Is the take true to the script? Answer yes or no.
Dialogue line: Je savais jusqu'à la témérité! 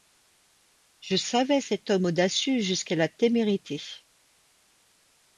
no